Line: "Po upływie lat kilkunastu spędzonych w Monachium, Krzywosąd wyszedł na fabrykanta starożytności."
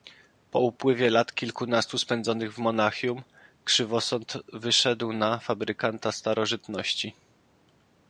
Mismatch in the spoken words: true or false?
false